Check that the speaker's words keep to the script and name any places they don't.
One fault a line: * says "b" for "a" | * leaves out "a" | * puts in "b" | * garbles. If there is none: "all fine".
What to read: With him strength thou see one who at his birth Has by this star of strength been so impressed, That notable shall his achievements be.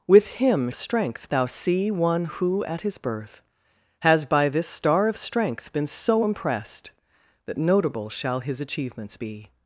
all fine